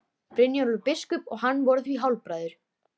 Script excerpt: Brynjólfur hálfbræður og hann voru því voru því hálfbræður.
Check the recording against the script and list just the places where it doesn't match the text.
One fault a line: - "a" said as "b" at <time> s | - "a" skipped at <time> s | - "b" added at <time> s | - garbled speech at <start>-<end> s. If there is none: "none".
- "hálfbræður" said as "biskup" at 0.9 s
- "voru því" skipped at 2.0 s